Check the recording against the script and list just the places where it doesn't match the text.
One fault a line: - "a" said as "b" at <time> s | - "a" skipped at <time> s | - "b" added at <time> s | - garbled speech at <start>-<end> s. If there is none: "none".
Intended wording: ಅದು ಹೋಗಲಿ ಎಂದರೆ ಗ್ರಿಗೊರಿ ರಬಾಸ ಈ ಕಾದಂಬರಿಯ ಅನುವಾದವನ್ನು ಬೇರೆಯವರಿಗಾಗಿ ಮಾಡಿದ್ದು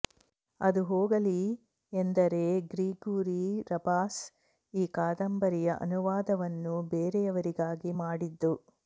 none